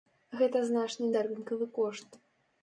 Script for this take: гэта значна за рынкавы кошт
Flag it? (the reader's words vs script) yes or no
no